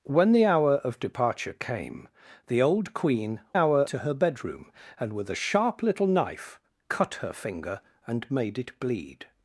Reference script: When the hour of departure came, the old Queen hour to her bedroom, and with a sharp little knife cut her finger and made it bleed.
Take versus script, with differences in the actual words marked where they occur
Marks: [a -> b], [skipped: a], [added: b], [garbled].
When the hour of departure came, the old Queen hour to her bedroom, and with a sharp little knife cut her finger and made it bleed.